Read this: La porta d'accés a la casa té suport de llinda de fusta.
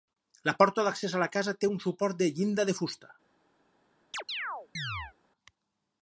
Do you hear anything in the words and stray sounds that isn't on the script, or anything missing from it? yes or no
yes